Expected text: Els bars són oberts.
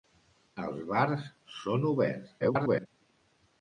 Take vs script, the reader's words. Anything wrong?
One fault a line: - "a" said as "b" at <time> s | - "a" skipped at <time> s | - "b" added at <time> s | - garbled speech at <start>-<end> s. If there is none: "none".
- garbled speech at 2.4-2.9 s